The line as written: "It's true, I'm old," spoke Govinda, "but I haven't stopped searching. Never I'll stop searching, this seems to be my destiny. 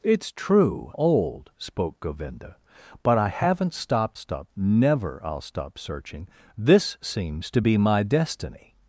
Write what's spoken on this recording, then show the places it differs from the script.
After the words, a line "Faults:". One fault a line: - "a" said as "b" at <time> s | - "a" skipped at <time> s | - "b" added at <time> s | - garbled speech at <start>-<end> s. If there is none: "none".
"It's true, Old," spoke Govinda, "but I haven't stopped stop. Never I'll stop searching, this seems to be my destiny.
Faults:
- "I'm" skipped at 0.9 s
- "searching" said as "stop" at 4.1 s